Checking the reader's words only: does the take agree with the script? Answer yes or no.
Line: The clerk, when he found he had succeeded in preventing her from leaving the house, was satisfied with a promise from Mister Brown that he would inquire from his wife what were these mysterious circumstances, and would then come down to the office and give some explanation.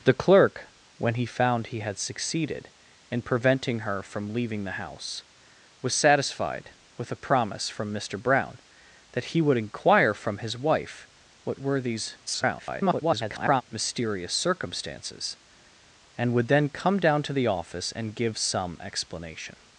no